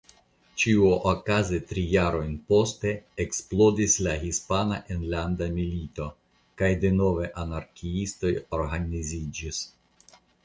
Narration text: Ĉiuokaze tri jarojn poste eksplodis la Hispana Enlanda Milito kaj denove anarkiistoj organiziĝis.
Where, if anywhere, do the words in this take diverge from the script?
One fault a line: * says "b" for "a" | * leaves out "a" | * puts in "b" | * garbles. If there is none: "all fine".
all fine